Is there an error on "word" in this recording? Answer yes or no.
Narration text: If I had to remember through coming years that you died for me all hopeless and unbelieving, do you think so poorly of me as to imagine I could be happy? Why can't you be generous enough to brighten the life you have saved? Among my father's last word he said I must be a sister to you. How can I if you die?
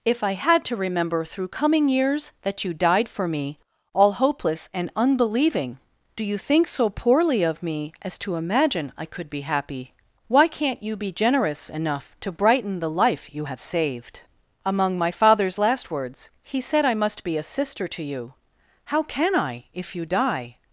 yes